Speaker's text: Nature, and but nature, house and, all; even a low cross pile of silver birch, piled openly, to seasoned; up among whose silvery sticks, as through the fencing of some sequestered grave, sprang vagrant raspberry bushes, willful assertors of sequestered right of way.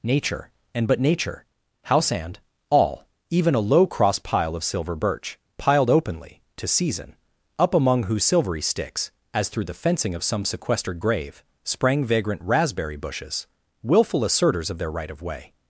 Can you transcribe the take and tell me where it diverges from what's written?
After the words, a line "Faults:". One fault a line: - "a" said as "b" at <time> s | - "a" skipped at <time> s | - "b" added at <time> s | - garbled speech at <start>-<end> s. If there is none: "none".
Nature, and but nature, house and, all; even a low cross pile of silver birch, piled openly, to season; up among whose silvery sticks, as through the fencing of some sequestered grave, sprang vagrant raspberry bushes, willful assertors of their right of way.
Faults:
- "seasoned" said as "season" at 6.7 s
- "sequestered" said as "their" at 14.8 s